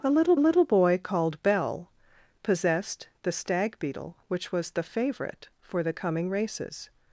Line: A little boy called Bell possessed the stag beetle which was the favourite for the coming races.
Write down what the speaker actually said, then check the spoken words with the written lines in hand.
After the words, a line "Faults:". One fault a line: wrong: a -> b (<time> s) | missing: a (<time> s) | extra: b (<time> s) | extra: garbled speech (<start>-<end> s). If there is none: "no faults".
A little little boy called Bell possessed the stag beetle which was the favourite for the coming races.
Faults:
extra: little (0.4 s)